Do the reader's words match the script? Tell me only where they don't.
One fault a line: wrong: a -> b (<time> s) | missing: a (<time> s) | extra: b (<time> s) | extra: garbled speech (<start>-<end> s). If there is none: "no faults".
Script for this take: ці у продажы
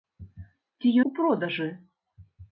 no faults